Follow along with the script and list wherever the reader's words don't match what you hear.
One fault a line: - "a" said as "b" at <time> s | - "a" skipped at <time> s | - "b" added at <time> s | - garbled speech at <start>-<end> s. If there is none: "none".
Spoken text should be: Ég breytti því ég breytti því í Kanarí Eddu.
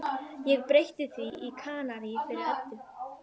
- "ég breytti því" skipped at 1.3 s
- "fyrir" added at 2.3 s